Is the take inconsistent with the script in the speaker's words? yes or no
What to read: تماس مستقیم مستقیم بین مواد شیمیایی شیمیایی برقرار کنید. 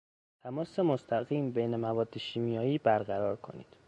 yes